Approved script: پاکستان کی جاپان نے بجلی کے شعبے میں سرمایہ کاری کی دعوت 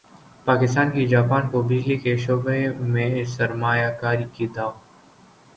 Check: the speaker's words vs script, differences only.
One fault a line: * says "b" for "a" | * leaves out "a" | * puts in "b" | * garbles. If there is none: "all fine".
* says "کو" for "نے"